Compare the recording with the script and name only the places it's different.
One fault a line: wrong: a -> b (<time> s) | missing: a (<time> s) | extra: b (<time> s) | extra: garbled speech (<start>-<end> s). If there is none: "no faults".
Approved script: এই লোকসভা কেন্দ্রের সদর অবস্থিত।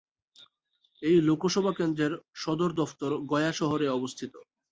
extra: দফতর গয়া শহরে (2.8 s)